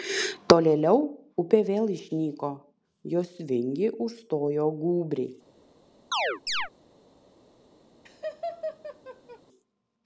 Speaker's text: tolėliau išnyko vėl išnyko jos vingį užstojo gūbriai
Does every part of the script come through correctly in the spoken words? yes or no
no